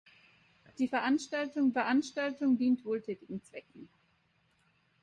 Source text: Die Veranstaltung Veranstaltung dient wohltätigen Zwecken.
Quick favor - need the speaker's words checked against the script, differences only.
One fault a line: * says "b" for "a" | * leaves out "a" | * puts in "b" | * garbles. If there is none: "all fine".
all fine